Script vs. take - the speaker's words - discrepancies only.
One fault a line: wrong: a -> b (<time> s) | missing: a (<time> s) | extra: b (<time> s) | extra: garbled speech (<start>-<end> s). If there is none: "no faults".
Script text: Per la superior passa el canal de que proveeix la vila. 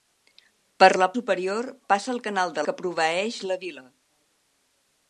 no faults